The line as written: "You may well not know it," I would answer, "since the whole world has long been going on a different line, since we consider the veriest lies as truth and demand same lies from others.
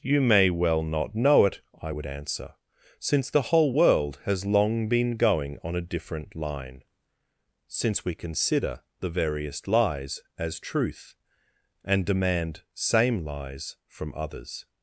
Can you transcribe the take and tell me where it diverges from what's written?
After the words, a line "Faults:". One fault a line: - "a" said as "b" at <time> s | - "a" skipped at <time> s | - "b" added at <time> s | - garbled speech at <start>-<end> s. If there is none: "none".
"You may well not know it," I would answer, "since the whole world has long been going on a different line, since we consider the veriest lies as truth and demand same lies from others.
Faults:
none